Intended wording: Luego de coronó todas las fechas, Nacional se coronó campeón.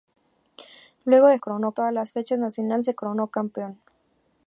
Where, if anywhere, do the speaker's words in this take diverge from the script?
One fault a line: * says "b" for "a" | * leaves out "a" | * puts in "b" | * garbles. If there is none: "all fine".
all fine